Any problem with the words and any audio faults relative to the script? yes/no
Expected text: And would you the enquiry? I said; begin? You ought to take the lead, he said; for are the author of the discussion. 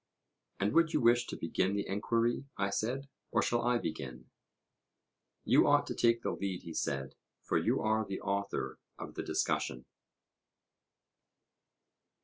yes